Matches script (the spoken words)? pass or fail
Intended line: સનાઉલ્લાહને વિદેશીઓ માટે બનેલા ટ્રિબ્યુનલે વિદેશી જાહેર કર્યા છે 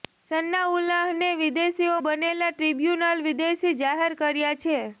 fail